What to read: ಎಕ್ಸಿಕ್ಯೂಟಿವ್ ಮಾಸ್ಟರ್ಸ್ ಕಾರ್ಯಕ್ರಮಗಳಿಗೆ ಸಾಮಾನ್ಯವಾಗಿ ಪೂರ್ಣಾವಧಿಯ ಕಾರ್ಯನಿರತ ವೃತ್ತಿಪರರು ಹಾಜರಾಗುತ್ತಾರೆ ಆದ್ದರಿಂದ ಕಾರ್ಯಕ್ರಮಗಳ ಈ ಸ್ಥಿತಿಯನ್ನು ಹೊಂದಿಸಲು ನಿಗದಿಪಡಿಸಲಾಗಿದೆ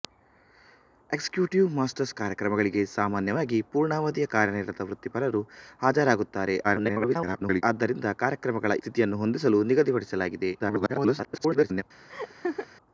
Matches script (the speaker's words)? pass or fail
fail